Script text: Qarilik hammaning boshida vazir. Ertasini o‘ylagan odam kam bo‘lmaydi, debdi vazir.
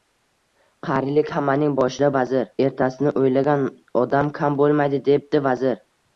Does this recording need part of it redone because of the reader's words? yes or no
no